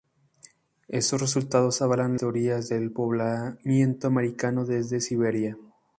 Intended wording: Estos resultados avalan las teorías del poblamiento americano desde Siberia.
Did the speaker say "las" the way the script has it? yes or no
no